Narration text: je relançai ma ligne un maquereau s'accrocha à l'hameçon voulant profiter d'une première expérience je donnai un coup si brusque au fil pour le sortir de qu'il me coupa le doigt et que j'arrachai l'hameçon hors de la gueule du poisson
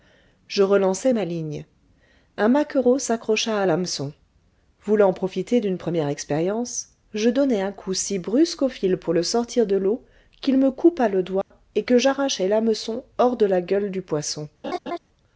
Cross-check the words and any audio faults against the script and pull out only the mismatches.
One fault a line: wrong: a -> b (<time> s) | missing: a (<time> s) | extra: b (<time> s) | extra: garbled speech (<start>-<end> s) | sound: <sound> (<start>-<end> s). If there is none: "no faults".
extra: l'eau (9.8 s)
sound: dropout (11.4-11.5 s)
sound: laugh (14.6-15.0 s)